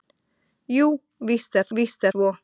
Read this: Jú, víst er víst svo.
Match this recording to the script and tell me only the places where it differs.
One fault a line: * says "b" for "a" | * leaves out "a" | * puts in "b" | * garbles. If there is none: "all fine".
all fine